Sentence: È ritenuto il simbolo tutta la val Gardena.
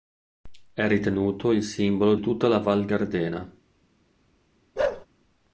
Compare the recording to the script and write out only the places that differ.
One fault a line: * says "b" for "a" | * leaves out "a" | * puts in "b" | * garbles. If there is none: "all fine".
all fine